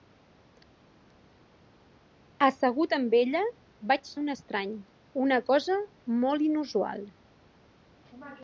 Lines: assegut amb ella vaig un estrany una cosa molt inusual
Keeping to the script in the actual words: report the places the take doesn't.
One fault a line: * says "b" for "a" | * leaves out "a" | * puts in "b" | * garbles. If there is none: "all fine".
all fine